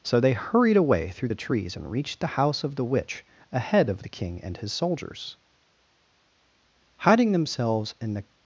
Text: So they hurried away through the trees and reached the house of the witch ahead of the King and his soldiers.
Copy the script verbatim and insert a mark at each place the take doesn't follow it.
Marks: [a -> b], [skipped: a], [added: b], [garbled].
So they hurried away through the trees and reached the house of the witch ahead of the King and his soldiers. [added: Hiding themselves in the]